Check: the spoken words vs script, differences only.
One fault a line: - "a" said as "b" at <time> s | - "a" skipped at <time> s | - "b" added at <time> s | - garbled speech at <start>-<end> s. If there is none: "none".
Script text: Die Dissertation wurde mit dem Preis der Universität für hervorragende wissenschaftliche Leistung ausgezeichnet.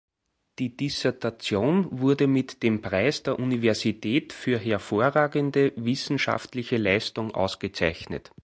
none